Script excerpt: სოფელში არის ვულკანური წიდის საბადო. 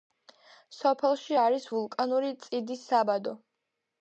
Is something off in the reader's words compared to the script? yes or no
no